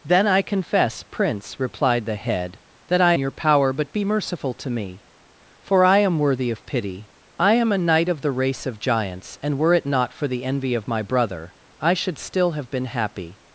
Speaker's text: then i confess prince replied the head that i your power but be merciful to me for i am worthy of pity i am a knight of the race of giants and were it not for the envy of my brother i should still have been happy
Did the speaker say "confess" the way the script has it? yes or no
yes